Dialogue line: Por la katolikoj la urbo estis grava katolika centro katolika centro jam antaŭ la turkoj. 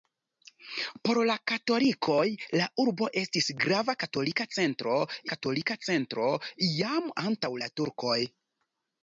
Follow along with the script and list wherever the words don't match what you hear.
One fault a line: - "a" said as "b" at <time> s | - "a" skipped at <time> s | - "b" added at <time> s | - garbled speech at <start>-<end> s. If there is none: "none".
none